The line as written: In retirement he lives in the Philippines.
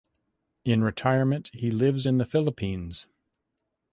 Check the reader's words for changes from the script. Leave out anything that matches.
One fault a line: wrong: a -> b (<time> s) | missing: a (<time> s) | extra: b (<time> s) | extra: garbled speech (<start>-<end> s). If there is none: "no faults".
no faults